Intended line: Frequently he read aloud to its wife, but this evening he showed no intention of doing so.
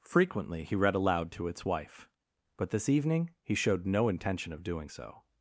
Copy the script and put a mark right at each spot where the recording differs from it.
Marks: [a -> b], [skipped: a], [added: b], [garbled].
Frequently he read aloud to its wife, but this evening he showed no intention of doing so.